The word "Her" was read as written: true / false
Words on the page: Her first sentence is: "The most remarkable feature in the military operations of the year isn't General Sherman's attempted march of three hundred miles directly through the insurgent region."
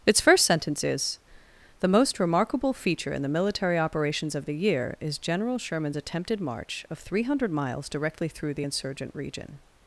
false